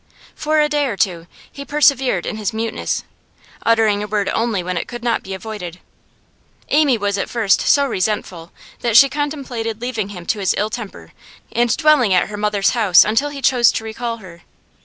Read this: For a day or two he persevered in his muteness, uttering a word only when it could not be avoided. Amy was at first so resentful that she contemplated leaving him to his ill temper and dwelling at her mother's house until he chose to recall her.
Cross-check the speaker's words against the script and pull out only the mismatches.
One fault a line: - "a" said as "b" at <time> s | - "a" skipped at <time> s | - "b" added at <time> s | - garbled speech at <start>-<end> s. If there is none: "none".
none